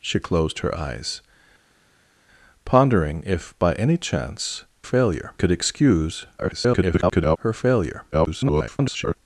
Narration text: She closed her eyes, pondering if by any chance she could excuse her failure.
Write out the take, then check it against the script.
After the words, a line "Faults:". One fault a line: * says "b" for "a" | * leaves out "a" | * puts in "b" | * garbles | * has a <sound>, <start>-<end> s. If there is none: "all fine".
She closed her eyes, pondering if by any chance failure could excuse [garbled] her failure. [garbled]
Faults:
* says "failure" for "she"
* garbles
* garbles